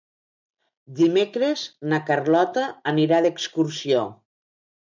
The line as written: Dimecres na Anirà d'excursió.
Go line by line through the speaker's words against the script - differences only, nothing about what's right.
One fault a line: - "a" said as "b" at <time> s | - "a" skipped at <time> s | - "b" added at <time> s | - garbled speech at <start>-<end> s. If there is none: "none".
- "Carlota" added at 2.1 s